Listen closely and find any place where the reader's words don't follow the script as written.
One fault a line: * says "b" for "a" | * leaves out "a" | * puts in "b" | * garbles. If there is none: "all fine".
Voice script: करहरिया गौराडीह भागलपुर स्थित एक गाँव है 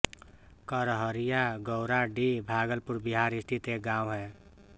* puts in "बिहार"